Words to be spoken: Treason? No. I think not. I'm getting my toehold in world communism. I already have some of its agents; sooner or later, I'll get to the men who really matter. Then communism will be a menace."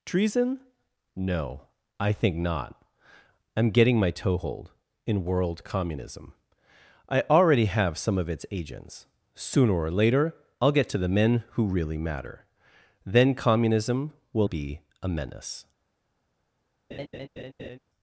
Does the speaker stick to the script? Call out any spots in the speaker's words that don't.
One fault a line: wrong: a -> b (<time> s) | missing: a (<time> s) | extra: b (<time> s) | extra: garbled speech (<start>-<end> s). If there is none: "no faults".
no faults